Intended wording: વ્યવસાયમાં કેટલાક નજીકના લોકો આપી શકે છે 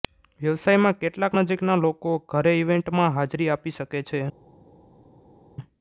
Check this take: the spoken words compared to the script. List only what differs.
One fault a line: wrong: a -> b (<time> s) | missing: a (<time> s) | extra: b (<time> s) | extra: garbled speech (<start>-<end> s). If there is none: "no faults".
extra: ઘરે ઇવેન્ટમાં હાજરી (2.3 s)